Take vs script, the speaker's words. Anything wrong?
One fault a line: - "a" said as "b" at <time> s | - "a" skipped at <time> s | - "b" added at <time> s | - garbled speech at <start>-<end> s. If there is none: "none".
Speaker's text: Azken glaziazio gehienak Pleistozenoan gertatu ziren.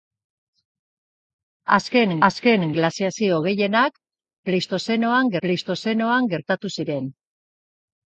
- "azken" added at 2.3 s
- "Pleistozenoan" added at 5.5 s